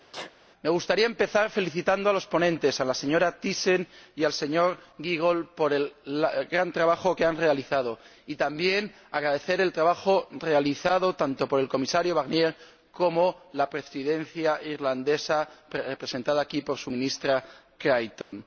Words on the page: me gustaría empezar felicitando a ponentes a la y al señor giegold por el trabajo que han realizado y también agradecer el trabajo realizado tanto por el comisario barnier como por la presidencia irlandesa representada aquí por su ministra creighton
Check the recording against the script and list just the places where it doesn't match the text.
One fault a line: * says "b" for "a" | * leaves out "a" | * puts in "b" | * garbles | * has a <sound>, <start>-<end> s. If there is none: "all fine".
* has a sneeze, 0.1-0.3 s
* puts in "los"
* puts in "señora thyssen"
* puts in "gran"
* has a dropout, 18.2-18.3 s